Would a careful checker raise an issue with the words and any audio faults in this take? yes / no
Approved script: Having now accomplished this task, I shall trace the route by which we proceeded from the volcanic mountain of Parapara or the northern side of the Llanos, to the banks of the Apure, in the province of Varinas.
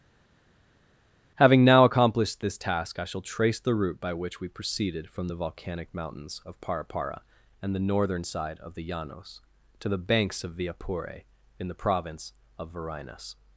yes